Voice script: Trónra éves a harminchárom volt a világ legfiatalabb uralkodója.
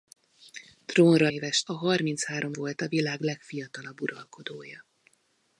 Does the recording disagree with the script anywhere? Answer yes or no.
no